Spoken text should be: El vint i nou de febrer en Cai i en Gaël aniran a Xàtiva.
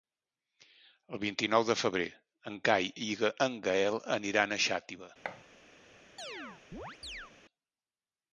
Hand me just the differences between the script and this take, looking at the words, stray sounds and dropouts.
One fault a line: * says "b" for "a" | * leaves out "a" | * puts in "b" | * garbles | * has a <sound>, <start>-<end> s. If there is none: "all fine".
* has a thud, 5.2-5.4 s
* has a chirp, 6.2-7.3 s